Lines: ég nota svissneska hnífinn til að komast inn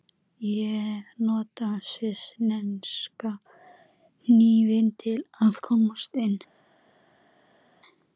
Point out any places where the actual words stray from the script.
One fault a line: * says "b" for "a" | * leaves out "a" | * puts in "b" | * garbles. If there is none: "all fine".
all fine